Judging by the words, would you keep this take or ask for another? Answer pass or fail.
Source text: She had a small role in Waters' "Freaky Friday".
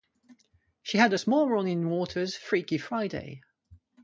pass